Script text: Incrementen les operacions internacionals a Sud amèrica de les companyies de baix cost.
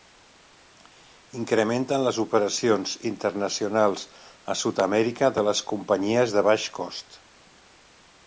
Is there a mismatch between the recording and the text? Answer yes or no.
no